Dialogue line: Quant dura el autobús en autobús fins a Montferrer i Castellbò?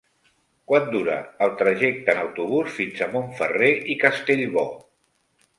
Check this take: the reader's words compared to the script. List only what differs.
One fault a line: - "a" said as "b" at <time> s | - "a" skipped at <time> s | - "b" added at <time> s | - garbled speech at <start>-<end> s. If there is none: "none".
- "autobús" said as "trajecte" at 1.6 s